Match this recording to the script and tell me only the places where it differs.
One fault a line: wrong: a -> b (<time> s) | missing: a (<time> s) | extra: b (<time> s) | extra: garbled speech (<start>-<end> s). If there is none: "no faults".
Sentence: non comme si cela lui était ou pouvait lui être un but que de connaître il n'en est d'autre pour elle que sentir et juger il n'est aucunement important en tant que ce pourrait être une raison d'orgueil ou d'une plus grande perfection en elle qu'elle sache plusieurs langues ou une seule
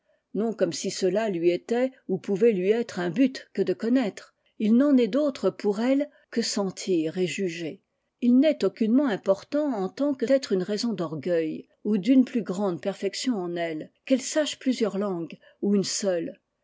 missing: ce pourrait (10.2 s)